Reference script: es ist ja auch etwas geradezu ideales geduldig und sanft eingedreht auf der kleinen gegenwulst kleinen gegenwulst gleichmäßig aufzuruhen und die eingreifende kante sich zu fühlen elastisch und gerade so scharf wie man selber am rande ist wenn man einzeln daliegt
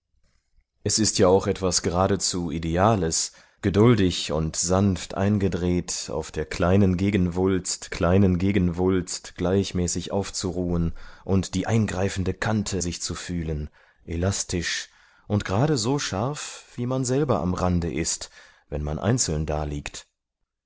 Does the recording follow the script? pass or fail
pass